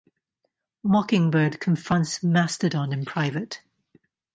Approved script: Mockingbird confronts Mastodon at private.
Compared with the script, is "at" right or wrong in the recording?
wrong